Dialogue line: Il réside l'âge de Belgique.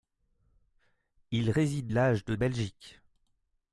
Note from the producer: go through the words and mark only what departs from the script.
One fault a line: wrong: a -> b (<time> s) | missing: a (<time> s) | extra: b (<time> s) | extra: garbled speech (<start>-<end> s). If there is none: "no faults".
no faults